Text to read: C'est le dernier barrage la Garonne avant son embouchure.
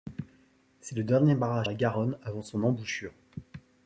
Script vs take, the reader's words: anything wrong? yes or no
no